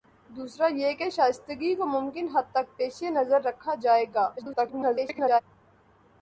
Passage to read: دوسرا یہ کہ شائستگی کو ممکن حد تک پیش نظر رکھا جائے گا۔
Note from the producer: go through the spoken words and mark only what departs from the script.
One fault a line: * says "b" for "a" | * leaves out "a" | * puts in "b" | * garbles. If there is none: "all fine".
* garbles